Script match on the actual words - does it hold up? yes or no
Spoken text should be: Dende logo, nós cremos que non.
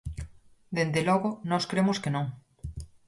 yes